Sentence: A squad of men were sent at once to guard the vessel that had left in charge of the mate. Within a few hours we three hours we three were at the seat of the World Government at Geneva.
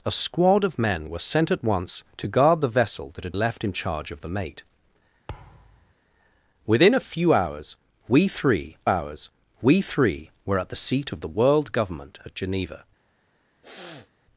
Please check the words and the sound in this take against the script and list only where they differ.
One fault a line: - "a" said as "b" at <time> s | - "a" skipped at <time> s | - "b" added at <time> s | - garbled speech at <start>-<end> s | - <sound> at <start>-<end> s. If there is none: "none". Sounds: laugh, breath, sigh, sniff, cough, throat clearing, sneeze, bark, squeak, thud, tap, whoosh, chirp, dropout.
- thud at 5.3-5.9 s
- sniff at 13.6-14.1 s